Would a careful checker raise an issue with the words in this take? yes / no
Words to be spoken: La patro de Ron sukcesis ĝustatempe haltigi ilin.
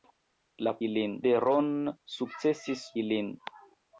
yes